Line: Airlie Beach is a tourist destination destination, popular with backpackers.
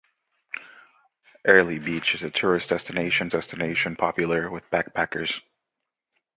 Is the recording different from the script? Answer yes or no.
no